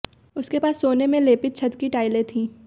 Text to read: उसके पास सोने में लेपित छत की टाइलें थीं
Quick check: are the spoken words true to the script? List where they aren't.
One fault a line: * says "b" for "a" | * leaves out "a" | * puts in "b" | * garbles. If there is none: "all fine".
all fine